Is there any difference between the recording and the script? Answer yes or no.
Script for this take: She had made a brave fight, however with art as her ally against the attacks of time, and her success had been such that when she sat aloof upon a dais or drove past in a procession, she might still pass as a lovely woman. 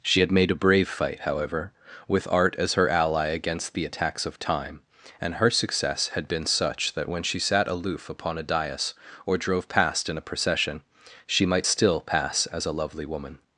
no